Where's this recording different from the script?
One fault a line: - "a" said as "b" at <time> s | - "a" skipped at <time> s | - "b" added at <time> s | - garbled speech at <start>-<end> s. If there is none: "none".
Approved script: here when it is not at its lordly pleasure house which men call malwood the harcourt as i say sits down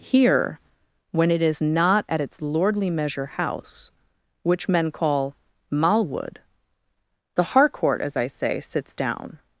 - "pleasure" said as "measure" at 2.9 s